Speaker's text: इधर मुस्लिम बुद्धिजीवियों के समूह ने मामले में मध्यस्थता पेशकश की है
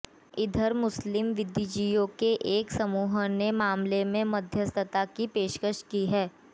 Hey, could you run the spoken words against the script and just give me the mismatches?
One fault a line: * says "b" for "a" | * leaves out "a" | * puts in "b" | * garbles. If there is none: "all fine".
* puts in "एक"
* puts in "की"